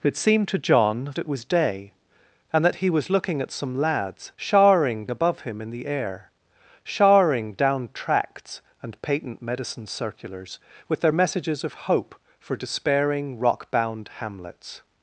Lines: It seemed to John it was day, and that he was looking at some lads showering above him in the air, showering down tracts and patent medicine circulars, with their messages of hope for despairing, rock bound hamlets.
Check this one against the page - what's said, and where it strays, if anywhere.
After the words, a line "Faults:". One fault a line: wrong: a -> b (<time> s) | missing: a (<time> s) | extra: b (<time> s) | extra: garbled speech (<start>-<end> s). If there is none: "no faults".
It seemed to John it was day, and that he was looking at some lads showering above him in the air, showering down tracts and patent medicine circulars, with their messages of hope for despairing, rock bound hamlets.
Faults:
no faults